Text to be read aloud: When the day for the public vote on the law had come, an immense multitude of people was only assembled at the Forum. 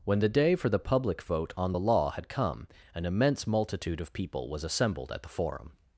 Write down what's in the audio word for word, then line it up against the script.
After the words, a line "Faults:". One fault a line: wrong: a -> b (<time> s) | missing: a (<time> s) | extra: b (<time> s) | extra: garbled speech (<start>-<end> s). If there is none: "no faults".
When the day for the public vote on the law had come, an immense multitude of people was assembled at the Forum.
Faults:
missing: only (4.6 s)